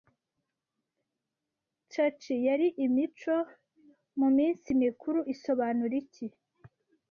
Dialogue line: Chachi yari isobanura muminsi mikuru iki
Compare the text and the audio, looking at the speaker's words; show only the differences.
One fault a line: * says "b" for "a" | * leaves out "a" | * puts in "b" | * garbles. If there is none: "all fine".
* says "imico" for "isobanura"
* puts in "isobanura"